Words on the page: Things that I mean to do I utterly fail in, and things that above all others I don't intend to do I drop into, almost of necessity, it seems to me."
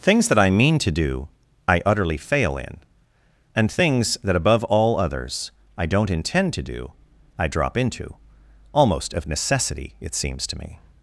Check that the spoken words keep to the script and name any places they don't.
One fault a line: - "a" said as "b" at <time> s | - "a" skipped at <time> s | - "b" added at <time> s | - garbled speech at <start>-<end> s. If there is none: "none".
none